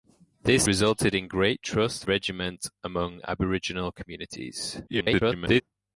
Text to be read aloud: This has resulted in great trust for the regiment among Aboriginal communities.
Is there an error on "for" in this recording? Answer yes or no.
yes